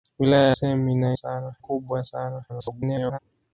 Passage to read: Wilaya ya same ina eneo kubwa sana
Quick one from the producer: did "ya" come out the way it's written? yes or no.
no